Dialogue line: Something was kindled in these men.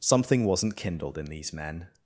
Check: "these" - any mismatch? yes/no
no